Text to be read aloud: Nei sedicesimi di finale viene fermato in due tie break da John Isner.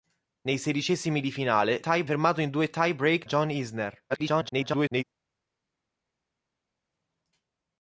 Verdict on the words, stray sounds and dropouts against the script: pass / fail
fail